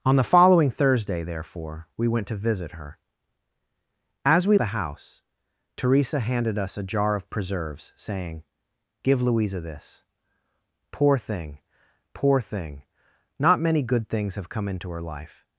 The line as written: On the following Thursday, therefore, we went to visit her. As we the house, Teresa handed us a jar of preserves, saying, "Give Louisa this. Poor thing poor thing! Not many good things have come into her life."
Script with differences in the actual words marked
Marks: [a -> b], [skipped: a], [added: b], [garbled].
On the following Thursday, therefore, we went to visit her. As we the house, Teresa handed us a jar of preserves, saying, "Give Louisa this. Poor thing poor thing! Not many good things have come into her life."